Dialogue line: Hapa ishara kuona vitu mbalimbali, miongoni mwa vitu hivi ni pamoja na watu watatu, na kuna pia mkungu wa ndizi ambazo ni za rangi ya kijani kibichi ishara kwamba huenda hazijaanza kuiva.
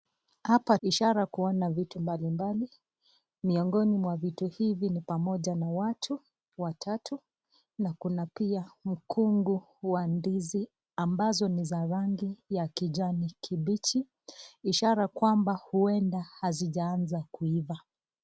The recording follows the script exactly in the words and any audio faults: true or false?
true